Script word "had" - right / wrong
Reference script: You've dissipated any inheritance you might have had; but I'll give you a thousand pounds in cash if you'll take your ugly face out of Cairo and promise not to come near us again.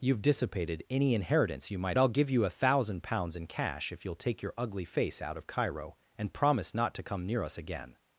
wrong